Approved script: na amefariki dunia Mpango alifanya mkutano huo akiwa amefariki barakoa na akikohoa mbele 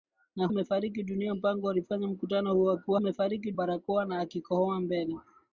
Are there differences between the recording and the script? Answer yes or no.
no